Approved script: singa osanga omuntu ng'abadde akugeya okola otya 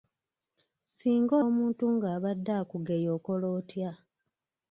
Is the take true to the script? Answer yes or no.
no